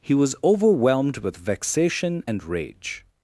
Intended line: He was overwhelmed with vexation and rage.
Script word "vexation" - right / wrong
right